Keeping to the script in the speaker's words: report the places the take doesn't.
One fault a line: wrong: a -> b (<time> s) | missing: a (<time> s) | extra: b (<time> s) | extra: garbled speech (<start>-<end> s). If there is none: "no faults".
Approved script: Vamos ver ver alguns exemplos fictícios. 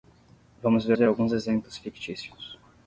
no faults